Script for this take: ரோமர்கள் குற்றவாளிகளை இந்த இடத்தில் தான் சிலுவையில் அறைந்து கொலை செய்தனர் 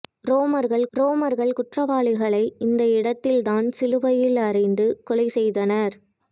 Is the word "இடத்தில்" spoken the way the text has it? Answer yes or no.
yes